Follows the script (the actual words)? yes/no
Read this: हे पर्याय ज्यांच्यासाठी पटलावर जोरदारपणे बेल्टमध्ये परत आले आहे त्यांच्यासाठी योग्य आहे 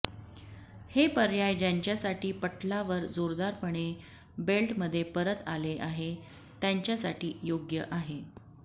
yes